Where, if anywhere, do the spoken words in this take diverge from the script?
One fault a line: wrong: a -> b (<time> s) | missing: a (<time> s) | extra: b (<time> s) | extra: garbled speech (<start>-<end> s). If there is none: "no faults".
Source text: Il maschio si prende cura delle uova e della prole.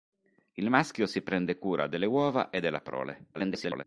extra: garbled speech (3.3-3.8 s)